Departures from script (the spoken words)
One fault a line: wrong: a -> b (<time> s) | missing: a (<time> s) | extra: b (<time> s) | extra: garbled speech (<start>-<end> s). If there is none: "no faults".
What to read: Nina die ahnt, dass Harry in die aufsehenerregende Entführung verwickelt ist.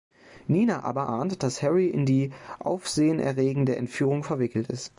wrong: die -> aber (0.8 s)